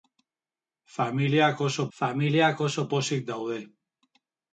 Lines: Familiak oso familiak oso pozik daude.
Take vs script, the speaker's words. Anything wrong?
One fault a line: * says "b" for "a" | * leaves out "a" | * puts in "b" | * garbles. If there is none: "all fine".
all fine